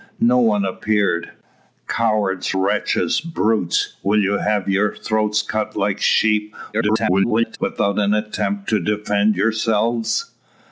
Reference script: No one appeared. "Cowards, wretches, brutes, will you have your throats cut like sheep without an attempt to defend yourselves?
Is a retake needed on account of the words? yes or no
yes